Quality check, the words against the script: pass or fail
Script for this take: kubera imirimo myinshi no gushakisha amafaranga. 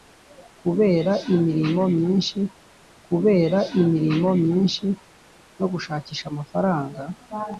fail